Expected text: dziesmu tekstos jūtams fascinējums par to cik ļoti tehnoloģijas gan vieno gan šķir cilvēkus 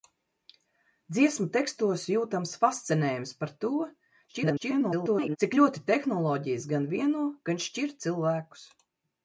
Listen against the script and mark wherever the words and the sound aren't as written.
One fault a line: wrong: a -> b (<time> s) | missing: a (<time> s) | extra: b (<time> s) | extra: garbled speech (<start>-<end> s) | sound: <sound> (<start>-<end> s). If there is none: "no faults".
extra: garbled speech (4.3-5.4 s)